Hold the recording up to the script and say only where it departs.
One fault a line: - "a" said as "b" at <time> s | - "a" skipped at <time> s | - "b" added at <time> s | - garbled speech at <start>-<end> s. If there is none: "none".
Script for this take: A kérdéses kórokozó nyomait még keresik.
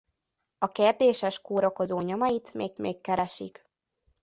- "még" added at 2.8 s